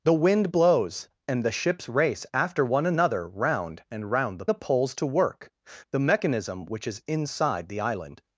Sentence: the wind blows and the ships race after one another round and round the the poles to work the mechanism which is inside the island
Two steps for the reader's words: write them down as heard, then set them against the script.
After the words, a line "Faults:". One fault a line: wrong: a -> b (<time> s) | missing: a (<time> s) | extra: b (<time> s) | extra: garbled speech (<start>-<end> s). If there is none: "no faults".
the wind blows and the ships race after one another round and round the the poles to work the mechanism which is inside the island
Faults:
no faults